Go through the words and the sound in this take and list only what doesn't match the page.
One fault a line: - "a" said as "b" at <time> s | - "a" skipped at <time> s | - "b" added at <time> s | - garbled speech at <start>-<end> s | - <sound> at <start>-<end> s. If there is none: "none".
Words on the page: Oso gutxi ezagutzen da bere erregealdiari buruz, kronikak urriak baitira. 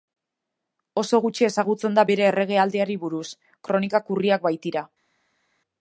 none